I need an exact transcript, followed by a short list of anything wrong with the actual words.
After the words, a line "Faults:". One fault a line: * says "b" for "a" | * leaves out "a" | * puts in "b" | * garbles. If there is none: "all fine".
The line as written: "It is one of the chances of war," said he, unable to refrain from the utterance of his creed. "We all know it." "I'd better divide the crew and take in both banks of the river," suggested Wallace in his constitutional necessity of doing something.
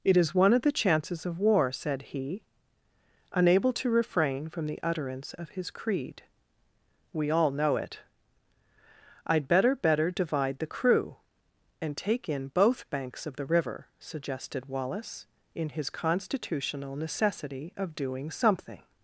"It is one of the chances of war," said he, unable to refrain from the utterance of his creed. "We all know it." "I'd better better divide the crew and take in both banks of the river," suggested Wallace in his constitutional necessity of doing something.
Faults:
* puts in "better"